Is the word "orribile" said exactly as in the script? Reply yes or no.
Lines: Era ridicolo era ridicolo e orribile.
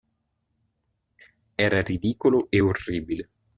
yes